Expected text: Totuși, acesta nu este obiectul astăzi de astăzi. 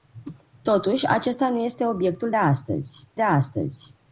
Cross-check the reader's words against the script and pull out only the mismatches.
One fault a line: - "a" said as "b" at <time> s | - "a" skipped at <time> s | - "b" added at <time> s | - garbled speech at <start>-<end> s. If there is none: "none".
none